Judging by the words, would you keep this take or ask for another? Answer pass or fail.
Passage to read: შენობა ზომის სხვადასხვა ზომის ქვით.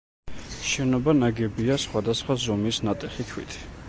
fail